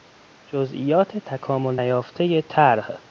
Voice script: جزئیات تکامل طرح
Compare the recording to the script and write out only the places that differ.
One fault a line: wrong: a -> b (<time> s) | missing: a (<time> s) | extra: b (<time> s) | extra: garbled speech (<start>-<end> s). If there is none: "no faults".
extra: نیافتهی (1.8 s)